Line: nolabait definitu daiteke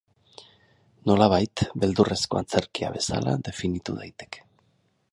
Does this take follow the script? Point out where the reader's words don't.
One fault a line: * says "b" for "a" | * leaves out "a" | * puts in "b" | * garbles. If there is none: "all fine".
* puts in "beldurrezko antzerkia bezala"